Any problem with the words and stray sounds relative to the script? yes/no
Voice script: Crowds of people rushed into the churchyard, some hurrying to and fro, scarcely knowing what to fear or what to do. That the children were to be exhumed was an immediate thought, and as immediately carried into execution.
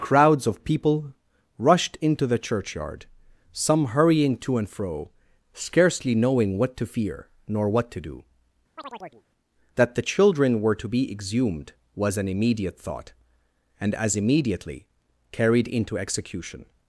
yes